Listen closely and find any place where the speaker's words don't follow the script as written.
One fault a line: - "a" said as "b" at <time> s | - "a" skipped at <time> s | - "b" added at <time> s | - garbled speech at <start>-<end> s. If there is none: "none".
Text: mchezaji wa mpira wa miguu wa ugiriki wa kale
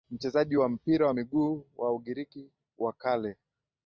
none